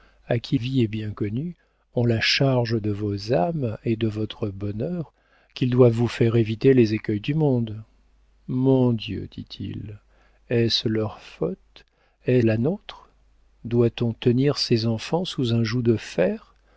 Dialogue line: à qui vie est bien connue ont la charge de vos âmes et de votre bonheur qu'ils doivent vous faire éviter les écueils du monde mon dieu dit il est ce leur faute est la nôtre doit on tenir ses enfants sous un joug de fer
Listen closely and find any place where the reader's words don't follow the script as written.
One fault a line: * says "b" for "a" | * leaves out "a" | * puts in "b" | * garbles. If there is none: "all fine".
all fine